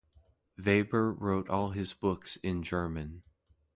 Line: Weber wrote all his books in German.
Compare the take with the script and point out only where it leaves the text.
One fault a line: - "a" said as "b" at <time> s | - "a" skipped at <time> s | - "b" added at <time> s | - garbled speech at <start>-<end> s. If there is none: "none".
none